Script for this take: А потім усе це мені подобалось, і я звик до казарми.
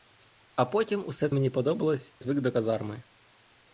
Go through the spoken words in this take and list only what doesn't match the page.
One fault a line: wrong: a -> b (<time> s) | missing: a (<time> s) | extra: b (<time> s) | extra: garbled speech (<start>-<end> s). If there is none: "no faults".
missing: це (1.3 s)
missing: і я (2.1 s)